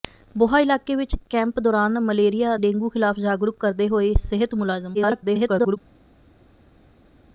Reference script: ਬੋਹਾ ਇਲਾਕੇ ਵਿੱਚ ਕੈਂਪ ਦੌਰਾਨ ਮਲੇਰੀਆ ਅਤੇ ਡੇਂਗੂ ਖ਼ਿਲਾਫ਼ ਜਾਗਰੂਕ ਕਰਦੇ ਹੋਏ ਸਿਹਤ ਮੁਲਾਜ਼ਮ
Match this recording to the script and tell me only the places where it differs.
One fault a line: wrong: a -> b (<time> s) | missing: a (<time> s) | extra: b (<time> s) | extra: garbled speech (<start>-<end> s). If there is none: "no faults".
missing: ਅਤੇ (2.5 s)
extra: garbled speech (4.9-5.8 s)